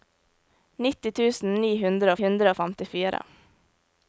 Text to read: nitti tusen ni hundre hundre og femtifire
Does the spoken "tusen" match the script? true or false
true